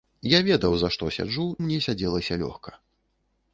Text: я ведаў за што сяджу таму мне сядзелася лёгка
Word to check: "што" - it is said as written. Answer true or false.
true